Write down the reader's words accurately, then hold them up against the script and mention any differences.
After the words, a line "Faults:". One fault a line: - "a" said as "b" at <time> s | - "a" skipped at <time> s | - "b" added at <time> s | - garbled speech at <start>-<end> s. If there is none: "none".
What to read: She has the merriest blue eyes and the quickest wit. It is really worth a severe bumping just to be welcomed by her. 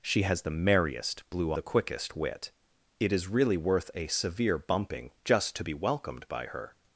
She has the merriest blue the quickest wit. It is really worth a severe bumping just to be welcomed by her.
Faults:
- "eyes and" skipped at 1.5 s